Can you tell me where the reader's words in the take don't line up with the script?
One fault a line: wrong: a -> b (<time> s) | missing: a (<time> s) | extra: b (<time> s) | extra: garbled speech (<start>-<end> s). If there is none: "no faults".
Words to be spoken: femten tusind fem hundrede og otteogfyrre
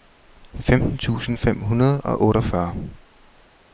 no faults